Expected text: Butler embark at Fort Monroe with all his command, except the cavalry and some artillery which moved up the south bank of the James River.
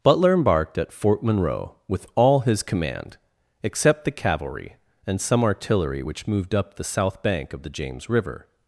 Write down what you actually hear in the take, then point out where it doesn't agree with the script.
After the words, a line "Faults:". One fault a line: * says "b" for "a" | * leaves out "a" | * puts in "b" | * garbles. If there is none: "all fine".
Butler embarked at Fort Monroe with all his command, except the cavalry and some artillery which moved up the south bank of the James River.
Faults:
* says "embarked" for "embark"